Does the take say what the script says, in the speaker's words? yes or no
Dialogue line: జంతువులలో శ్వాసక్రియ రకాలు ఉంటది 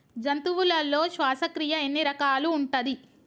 no